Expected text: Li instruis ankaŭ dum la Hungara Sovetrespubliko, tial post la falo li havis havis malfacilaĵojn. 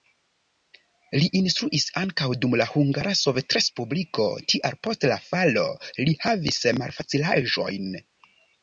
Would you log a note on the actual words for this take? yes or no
yes